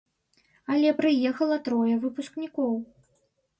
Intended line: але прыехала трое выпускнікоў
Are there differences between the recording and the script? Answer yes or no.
no